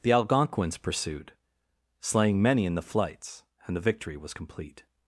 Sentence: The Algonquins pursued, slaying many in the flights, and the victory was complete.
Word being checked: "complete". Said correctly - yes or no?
yes